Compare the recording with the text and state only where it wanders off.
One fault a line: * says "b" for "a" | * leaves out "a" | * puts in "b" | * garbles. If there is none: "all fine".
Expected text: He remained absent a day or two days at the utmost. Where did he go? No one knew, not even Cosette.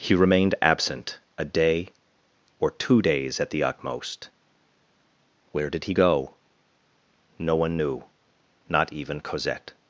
all fine